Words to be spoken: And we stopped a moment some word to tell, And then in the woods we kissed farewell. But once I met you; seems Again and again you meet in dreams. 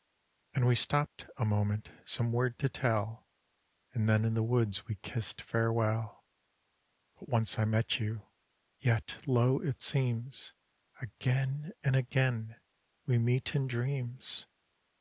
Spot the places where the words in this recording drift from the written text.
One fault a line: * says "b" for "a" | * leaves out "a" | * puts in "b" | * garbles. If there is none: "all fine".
* puts in "yet lo it"
* says "we" for "you"